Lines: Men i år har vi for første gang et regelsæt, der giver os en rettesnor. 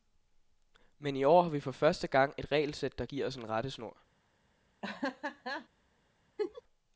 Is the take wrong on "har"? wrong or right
right